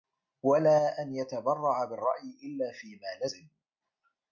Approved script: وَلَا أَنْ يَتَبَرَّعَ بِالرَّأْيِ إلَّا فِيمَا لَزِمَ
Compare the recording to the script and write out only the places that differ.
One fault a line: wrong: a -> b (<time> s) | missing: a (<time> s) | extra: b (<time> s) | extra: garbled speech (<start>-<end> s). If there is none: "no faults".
no faults